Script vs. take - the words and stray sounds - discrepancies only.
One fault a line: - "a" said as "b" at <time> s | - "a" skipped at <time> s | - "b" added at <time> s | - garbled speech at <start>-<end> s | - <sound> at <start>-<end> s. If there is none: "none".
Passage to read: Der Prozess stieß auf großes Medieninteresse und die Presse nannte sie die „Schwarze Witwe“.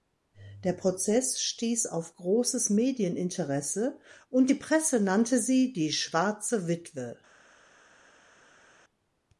none